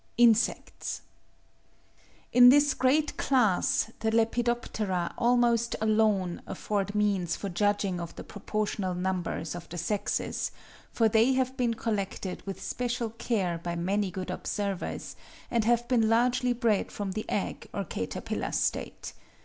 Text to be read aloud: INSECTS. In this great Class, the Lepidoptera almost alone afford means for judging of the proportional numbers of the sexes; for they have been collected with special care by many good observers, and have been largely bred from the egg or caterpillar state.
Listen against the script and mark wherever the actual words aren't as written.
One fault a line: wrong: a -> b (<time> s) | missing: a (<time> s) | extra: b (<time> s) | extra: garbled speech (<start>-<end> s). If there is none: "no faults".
no faults